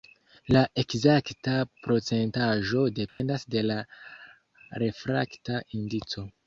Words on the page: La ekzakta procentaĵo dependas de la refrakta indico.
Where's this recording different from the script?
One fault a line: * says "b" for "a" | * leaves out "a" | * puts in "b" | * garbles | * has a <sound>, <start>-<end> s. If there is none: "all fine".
* has a dropout, 3.1-3.2 s